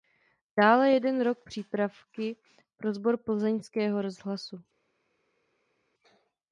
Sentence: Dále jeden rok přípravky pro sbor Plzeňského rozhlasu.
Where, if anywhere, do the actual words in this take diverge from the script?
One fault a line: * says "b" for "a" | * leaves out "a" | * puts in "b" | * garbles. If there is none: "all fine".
all fine